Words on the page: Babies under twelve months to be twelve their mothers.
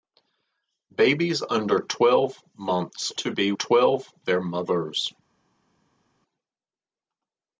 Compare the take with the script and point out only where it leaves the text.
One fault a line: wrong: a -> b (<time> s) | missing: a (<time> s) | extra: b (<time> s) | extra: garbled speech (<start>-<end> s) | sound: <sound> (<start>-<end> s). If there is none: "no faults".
no faults